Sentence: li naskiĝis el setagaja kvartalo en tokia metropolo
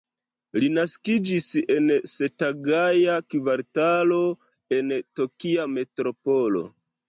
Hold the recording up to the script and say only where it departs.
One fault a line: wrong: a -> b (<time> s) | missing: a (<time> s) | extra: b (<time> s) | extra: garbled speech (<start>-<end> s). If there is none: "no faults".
wrong: el -> en (1.8 s)